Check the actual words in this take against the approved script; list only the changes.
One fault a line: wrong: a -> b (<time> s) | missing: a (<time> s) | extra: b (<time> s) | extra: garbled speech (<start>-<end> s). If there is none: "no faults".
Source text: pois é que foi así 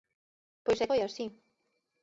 missing: que (0.9 s)